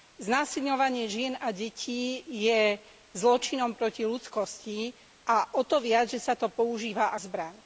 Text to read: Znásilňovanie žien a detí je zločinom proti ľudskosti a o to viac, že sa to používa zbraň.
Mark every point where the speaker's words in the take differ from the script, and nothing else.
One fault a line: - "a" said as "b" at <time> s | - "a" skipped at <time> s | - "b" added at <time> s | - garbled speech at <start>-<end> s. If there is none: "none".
none